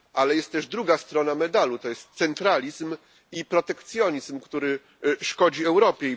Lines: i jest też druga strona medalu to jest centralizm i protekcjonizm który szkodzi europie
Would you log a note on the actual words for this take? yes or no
yes